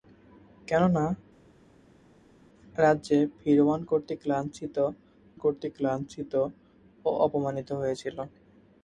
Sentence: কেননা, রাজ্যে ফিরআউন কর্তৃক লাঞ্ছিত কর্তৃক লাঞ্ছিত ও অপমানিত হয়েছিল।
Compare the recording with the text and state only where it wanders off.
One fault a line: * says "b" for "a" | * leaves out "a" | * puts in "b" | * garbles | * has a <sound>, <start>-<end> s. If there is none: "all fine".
all fine